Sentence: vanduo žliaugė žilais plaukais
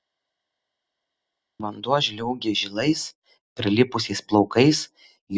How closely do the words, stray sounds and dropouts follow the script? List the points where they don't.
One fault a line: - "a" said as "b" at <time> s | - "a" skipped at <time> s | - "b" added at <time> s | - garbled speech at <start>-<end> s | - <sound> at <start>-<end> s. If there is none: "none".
- "prilipusiais" added at 3.6 s